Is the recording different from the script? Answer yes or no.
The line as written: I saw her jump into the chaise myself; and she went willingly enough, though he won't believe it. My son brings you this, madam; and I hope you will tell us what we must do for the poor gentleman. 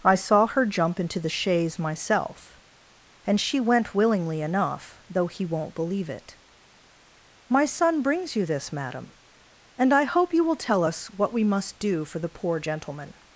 no